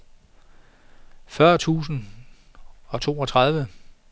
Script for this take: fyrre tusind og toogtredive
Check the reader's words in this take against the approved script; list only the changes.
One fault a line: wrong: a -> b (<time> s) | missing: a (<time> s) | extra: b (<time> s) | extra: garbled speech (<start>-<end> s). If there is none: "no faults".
no faults